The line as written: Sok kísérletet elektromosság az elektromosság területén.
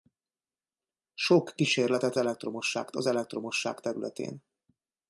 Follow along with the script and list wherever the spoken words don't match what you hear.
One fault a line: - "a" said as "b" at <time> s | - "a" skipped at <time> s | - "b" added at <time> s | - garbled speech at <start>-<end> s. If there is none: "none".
none